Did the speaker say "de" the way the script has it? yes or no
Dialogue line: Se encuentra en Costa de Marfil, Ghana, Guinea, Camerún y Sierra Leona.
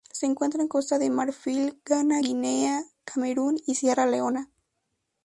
yes